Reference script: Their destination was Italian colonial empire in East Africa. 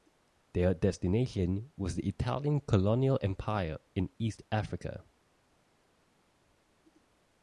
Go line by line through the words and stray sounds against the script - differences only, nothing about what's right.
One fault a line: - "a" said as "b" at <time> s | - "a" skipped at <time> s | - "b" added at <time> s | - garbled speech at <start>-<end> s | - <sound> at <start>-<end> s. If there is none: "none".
- "the" added at 1.9 s